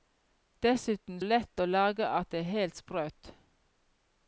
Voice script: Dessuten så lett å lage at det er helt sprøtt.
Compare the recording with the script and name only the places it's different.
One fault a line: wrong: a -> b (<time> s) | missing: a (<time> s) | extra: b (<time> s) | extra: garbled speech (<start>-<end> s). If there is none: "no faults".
missing: så (1.2 s)